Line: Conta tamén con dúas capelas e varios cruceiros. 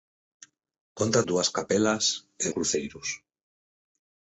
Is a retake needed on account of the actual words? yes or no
yes